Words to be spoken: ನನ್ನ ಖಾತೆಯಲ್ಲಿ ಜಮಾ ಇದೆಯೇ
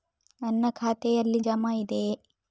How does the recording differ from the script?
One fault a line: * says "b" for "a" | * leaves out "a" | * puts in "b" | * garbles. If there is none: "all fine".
all fine